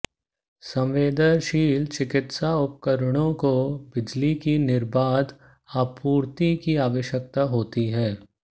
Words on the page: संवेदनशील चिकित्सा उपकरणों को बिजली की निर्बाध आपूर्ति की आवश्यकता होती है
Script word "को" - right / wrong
right